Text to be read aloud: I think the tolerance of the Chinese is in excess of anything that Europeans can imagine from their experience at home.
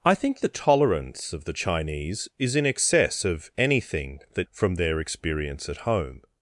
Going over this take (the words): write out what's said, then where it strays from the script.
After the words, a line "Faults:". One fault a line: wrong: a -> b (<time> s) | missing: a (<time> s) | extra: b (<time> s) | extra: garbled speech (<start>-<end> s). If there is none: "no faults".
I think the tolerance of the Chinese is in excess of anything that From their experience at home.
Faults:
missing: Europeans can imagine (4.5 s)